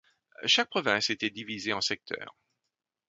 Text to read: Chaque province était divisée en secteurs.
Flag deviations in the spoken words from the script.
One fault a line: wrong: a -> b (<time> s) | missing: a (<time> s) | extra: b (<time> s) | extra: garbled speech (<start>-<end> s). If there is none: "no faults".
no faults